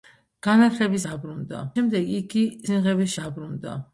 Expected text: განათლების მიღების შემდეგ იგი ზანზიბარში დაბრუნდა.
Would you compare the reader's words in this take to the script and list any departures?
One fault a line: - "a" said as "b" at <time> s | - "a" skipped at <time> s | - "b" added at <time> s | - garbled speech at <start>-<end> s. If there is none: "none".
- "მიღების" said as "დაბრუნდა" at 1.1 s
- "ზანზიბარში" said as "მიღების" at 2.7 s